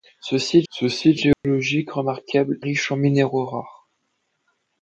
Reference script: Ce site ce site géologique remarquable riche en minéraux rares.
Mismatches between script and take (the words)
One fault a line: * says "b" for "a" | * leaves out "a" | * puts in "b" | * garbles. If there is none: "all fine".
all fine